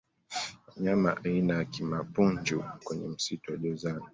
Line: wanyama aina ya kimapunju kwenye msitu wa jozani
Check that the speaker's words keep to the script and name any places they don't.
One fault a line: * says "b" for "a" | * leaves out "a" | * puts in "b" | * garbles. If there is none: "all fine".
all fine